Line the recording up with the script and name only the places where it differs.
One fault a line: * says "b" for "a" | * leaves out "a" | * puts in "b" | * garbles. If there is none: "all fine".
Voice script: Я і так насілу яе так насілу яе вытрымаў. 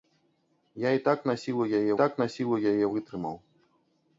all fine